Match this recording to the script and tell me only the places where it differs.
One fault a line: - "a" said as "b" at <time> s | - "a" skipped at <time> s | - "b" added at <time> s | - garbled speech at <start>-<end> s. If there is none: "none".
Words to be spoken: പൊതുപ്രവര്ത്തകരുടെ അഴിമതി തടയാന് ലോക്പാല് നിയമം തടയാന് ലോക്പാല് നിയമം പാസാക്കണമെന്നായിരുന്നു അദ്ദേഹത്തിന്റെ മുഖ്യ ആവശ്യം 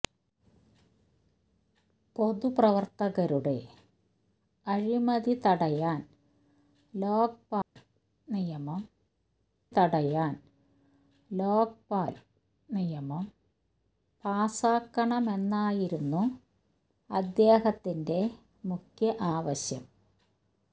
none